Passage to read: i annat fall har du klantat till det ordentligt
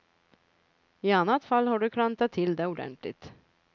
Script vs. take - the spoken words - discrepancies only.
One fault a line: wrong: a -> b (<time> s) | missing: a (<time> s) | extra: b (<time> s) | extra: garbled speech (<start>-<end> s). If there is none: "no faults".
no faults